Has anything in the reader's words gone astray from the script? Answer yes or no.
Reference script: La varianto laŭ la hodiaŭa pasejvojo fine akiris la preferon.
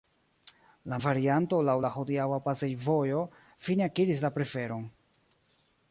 no